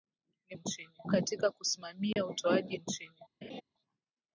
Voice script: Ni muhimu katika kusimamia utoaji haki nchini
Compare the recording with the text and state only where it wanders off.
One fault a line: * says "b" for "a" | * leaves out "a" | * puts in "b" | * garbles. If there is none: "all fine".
* says "nchini" for "muhimu"
* leaves out "haki"